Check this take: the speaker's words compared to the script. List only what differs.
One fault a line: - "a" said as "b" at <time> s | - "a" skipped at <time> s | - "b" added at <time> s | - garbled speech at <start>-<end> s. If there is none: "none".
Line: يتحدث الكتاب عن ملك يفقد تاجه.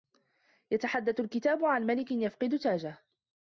none